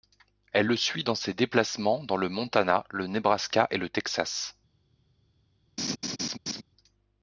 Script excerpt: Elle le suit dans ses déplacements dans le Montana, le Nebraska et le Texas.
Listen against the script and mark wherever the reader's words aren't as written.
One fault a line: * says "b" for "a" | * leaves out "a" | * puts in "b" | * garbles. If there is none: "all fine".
all fine